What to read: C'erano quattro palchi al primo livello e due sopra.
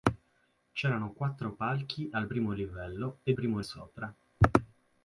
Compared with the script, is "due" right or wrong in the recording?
wrong